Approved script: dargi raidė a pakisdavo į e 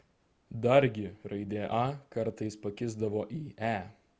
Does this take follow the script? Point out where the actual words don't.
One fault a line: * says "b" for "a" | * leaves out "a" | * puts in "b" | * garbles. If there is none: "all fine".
* puts in "kartais"